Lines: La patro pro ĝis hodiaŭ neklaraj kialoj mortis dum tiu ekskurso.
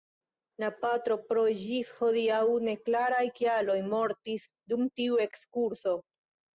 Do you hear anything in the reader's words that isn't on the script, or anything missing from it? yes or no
no